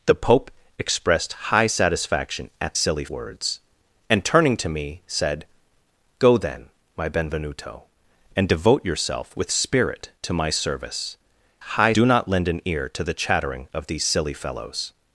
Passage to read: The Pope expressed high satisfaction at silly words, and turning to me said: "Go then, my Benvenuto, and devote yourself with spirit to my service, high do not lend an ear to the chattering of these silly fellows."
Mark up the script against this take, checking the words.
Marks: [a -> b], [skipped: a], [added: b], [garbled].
The Pope expressed high satisfaction at silly words, and turning to me said: "Go then, my Benvenuto, and devote yourself with spirit to my service, high do not lend an ear to the chattering of these silly fellows."